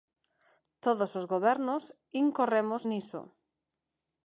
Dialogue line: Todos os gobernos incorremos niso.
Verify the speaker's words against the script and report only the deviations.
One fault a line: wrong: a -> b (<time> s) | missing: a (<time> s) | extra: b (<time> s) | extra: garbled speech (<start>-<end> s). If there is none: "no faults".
no faults